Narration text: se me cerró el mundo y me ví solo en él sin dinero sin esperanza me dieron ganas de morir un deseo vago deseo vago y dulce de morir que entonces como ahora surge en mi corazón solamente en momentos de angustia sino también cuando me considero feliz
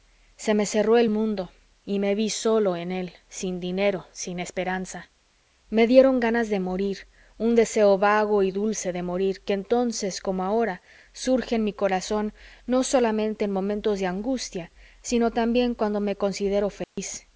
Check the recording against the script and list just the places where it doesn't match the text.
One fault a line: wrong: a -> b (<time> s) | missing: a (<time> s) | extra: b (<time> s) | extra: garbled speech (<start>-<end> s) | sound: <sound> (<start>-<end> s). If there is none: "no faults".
missing: deseo vago (8.4 s)
extra: no (12.7 s)
sound: dropout (16.8-17.0 s)